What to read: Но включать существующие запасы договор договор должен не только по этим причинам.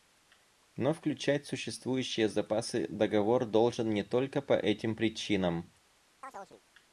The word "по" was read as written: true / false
true